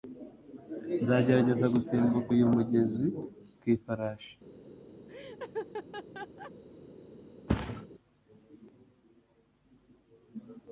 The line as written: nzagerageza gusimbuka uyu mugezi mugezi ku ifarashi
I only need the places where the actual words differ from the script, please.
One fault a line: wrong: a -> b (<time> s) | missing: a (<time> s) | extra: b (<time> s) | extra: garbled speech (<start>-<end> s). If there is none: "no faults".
missing: mugezi (3.1 s)